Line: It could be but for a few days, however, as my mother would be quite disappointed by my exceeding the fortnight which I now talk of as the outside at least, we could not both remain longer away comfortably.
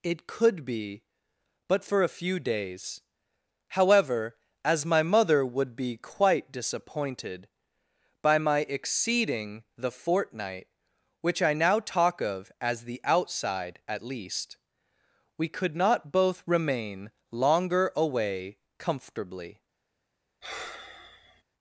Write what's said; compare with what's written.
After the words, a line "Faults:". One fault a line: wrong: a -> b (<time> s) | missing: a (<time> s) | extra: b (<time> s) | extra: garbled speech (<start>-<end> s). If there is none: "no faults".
It could be but for a few days, however, as my mother would be quite disappointed by my exceeding the fortnight which I now talk of as the outside at least, we could not both remain longer away comfortably.
Faults:
no faults